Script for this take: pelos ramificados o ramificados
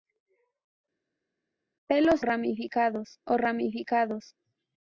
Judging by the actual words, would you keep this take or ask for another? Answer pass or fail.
pass